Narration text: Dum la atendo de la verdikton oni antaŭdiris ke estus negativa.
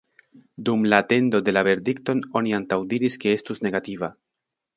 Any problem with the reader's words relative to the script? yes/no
no